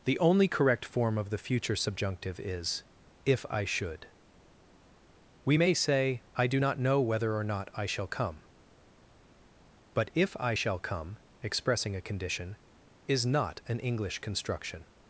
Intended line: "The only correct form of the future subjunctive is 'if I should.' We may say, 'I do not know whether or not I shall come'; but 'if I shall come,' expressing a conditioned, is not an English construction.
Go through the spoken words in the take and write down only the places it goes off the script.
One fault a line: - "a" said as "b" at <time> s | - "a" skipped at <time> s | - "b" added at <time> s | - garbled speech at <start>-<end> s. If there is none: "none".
- "conditioned" said as "condition" at 12.0 s